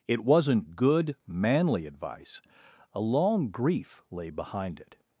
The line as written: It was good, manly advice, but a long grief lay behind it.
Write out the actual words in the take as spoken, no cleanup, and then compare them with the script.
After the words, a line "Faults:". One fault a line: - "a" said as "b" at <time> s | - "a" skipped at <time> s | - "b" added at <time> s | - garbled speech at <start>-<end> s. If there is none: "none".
It wasn't good, manly advice, a long grief lay behind it.
Faults:
- "was" said as "wasn't" at 0.2 s
- "but" skipped at 2.4 s